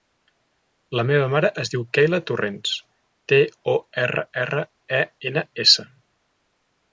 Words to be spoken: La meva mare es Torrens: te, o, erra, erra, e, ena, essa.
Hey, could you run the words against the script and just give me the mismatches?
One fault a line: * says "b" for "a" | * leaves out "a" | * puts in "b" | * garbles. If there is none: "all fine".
* puts in "diu Keyla"